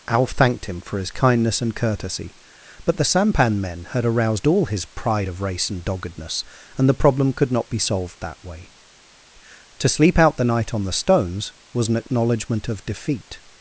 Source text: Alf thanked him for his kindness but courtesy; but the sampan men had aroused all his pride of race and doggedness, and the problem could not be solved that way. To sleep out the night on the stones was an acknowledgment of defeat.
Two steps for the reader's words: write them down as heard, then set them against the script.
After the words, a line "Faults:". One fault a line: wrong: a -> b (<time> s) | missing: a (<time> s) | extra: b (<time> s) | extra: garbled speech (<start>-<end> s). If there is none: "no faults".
Alf thanked him for his kindness and courtesy; but the sampan men had aroused all his pride of race and doggedness, and the problem could not be solved that way. To sleep out the night on the stones was an acknowledgment of defeat.
Faults:
wrong: but -> and (1.6 s)